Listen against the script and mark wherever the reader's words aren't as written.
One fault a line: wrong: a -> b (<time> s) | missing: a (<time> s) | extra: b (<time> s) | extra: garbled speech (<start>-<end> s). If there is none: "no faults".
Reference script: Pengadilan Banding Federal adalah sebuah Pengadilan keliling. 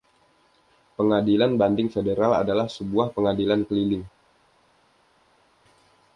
no faults